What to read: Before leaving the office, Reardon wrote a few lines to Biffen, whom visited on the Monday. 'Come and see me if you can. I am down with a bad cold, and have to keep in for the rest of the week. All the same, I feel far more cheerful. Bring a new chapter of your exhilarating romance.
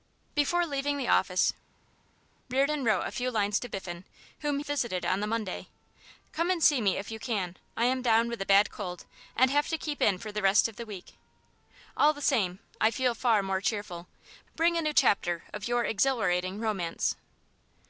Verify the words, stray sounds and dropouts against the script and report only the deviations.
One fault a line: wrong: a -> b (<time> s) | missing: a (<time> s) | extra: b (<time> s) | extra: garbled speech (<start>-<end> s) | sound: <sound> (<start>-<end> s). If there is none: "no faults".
no faults